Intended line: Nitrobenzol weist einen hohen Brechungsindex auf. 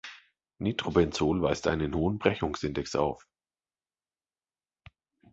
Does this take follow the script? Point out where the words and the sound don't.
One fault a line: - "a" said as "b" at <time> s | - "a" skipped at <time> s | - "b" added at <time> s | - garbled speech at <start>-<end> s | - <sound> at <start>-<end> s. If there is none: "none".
none